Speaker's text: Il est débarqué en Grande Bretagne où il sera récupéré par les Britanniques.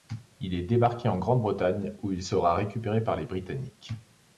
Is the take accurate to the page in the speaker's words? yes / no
yes